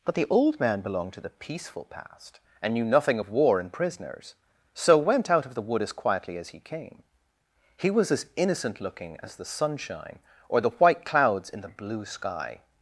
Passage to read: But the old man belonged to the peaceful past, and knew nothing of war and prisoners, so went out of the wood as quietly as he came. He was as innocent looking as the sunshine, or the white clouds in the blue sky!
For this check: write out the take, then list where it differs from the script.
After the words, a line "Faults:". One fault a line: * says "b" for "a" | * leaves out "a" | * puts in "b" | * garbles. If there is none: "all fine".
But the old man belonged to the peaceful past, and knew nothing of war and prisoners, so went out of the wood as quietly as he came. He was as innocent looking as the sunshine, or the white clouds in the blue sky!
Faults:
all fine